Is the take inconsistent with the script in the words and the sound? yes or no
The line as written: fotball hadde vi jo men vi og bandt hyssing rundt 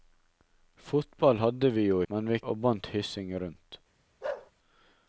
yes